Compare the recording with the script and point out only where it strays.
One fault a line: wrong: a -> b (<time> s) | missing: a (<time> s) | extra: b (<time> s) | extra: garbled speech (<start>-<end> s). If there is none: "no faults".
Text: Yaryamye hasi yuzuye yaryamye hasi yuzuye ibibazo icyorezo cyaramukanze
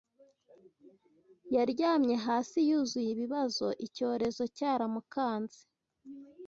missing: yaryamye hasi yuzuye (3.1 s)